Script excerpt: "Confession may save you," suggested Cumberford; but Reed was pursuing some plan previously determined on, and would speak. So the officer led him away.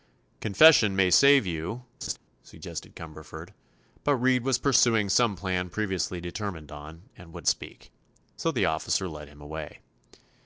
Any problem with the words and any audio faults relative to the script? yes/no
yes